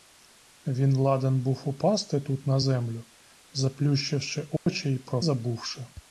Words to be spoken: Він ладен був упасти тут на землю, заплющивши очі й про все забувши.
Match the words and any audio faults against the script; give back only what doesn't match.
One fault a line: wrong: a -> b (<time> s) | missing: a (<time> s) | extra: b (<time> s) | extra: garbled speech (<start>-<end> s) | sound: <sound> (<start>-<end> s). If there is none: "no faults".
sound: dropout (4.6-4.7 s)
missing: все (5.2 s)